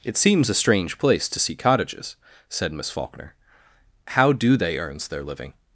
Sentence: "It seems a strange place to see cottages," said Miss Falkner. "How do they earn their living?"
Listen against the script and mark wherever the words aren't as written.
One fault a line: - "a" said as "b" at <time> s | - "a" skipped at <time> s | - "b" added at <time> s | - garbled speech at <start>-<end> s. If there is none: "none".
- "earn" said as "earns" at 4.8 s